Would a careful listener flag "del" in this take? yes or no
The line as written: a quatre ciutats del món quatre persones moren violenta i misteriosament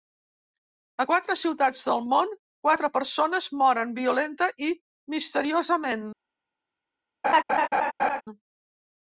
no